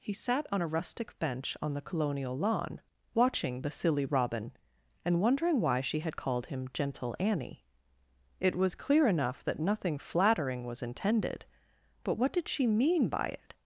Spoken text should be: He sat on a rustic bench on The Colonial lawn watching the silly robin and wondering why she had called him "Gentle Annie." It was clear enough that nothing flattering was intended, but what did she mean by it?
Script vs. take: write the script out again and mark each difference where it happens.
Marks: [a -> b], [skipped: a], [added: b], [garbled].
He sat on a rustic bench on The Colonial lawn watching the silly robin and wondering why she had called him "Gentle Annie." It was clear enough that nothing flattering was intended, but what did she mean by it?